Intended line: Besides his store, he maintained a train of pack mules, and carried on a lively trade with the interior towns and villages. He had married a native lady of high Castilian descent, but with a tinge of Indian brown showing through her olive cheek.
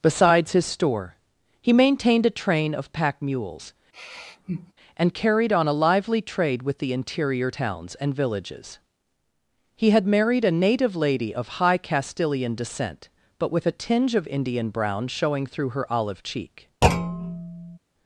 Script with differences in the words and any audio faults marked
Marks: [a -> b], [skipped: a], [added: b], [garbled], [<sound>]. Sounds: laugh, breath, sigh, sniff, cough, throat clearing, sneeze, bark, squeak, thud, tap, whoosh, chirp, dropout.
Besides his store, he maintained a train of pack mules, [sigh] and carried on a lively trade with the interior towns and villages. He had married a native lady of high Castilian descent, but with a tinge of Indian brown showing through her olive cheek. [thud]